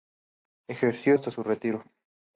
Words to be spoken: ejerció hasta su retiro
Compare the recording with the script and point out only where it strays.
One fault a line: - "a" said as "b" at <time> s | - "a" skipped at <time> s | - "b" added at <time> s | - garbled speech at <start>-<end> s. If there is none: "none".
none